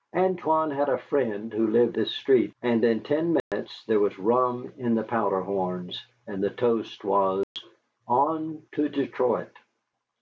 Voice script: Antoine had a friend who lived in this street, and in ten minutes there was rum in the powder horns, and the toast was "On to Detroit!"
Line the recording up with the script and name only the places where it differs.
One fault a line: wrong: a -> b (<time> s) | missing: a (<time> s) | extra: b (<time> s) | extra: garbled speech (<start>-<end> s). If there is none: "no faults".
missing: in (2.0 s)